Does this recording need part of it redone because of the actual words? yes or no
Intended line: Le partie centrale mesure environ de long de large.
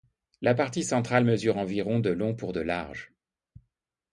yes